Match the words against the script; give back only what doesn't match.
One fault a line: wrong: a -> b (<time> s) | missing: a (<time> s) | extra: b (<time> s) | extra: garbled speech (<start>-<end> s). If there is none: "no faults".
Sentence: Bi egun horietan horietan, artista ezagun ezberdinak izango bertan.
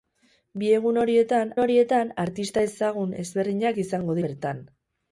no faults